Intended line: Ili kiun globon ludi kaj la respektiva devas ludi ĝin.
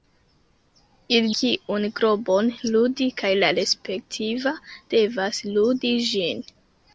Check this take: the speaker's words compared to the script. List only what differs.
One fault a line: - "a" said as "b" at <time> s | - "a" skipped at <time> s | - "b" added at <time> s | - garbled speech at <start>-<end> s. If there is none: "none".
none